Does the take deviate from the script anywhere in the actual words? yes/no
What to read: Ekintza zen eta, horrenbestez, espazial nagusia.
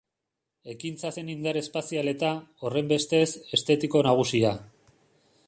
yes